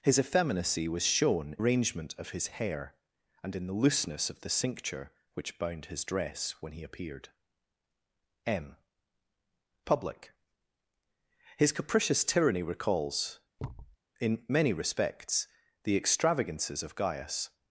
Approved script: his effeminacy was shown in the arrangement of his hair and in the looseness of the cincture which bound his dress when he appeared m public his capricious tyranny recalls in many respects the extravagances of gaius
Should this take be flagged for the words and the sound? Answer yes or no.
yes